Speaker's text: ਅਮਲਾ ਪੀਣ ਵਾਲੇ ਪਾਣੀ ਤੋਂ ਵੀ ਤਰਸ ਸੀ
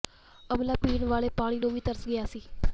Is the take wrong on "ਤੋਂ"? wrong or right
wrong